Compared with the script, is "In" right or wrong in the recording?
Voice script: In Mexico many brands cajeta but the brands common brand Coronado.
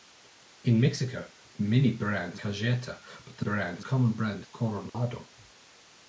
right